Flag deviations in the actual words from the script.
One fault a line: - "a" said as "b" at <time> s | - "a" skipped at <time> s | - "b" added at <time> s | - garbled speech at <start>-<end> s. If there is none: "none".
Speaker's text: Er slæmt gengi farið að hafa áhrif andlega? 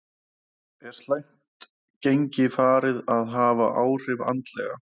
none